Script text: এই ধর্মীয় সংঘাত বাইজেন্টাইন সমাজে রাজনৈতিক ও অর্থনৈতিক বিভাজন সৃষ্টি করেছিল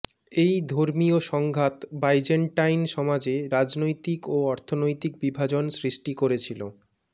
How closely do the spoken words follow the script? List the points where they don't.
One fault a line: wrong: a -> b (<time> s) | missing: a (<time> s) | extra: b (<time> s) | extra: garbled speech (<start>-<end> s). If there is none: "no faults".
no faults